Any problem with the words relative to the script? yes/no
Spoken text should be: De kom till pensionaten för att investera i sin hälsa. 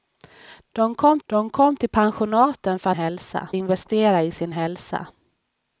yes